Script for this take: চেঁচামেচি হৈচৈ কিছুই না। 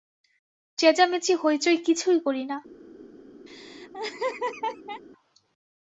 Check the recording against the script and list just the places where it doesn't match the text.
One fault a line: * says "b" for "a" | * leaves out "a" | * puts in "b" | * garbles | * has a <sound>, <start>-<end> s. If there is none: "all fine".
* puts in "করি"
* has a laugh, 3.5-5.0 s